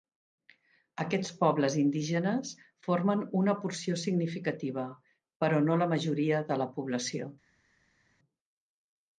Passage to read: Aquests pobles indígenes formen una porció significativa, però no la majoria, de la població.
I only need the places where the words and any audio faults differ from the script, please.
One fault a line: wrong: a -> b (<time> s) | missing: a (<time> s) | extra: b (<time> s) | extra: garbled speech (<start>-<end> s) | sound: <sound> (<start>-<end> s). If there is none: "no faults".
no faults